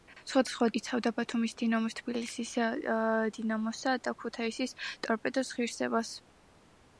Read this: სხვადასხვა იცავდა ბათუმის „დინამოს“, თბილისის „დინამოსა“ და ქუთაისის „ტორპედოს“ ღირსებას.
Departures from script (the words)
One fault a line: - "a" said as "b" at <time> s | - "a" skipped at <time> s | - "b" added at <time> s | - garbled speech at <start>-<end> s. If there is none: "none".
none